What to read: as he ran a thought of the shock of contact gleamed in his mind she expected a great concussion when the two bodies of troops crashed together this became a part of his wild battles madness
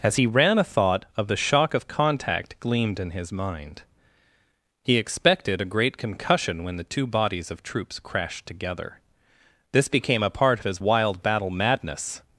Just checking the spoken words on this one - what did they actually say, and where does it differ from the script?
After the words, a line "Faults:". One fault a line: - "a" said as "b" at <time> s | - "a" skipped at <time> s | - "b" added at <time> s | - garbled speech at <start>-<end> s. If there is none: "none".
as he ran a thought of the shock of contact gleamed in his mind he expected a great concussion when the two bodies of troops crashed together this became a part of his wild battle madness
Faults:
- "she" said as "he" at 4.8 s
- "battles" said as "battle" at 11.2 s